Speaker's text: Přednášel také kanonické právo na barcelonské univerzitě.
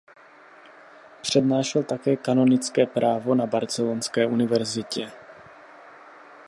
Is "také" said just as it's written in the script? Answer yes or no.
yes